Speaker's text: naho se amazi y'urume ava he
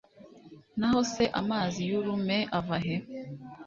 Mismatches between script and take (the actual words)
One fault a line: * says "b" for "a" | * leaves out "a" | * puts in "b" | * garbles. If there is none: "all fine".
all fine